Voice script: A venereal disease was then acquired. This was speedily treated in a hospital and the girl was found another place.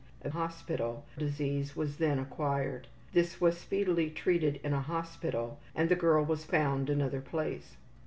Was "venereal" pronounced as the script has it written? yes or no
no